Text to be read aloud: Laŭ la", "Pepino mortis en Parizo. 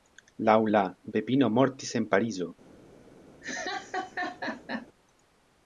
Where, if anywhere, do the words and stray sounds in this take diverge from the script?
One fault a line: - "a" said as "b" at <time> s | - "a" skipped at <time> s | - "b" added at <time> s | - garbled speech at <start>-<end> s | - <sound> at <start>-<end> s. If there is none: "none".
- laugh at 3.4-4.9 s